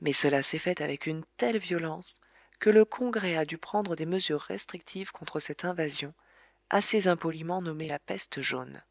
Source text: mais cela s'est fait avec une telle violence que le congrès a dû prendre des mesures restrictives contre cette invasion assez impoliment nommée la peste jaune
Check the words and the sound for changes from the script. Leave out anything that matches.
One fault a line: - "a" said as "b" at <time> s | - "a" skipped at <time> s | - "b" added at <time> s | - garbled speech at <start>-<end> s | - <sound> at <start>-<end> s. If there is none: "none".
none